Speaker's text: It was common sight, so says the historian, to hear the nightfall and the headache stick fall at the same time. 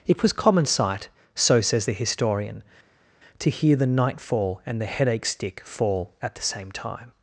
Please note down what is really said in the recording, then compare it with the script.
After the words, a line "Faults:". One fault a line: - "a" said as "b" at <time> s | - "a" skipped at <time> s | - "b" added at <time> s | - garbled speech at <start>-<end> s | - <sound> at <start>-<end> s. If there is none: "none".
It was common sight, so says the historian, to hear the nightfall and the headache stick fall at the same time.
Faults:
none